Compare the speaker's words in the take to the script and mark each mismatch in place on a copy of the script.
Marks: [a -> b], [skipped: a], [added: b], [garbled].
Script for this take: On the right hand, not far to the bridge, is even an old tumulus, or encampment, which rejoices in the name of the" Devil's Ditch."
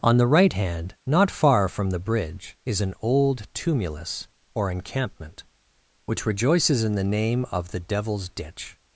On the right hand, not far [to -> from] the bridge, is [skipped: even] an old tumulus, or encampment, which rejoices in the name of the" Devil's Ditch."